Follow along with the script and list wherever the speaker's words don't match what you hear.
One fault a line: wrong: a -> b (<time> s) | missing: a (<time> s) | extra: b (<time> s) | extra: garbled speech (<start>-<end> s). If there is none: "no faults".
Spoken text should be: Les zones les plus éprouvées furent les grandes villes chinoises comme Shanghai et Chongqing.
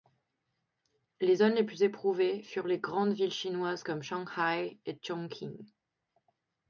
no faults